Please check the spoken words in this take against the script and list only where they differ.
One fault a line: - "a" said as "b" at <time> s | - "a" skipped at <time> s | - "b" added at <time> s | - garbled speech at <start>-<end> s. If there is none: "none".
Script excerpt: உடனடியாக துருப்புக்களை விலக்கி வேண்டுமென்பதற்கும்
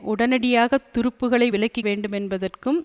none